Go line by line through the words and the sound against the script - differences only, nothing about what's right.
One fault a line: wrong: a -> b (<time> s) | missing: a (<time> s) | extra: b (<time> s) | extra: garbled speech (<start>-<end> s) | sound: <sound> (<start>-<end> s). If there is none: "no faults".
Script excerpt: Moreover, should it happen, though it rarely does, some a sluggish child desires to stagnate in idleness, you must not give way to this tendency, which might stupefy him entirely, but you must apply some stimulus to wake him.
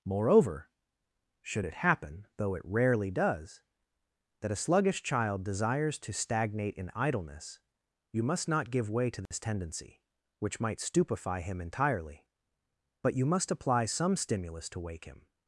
wrong: some -> that (4.4 s)
sound: dropout (9.3-9.3 s)